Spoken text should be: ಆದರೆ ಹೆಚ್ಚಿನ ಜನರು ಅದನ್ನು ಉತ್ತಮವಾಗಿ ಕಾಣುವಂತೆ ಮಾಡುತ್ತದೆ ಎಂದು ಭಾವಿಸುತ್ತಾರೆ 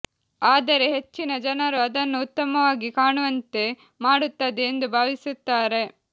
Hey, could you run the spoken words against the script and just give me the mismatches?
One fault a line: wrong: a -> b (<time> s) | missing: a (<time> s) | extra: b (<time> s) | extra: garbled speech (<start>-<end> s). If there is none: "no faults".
no faults